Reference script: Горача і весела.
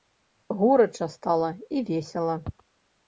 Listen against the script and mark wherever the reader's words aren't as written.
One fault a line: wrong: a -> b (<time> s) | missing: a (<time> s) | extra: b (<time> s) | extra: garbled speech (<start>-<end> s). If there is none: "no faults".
extra: стала (1.1 s)